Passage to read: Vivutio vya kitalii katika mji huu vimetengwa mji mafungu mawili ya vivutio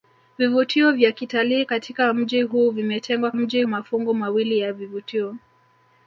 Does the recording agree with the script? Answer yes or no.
yes